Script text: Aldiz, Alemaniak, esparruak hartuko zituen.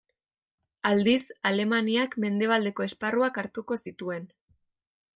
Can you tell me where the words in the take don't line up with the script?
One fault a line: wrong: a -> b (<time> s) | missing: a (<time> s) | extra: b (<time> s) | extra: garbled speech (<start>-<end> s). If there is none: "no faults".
extra: mendebaldeko (2.2 s)